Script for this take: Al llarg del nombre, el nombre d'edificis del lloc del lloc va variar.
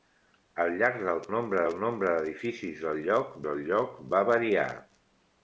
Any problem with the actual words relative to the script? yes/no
no